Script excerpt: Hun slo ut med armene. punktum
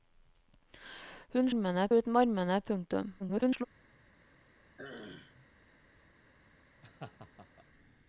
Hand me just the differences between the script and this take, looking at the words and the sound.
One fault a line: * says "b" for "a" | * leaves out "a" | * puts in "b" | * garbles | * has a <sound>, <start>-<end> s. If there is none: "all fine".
* says "armene" for "slo"
* garbles
* has a throat clearing, 4.8-5.5 s
* has a laugh, 6.8-7.7 s